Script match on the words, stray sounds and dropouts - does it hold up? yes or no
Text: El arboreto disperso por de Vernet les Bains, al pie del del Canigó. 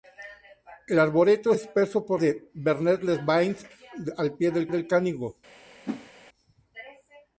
no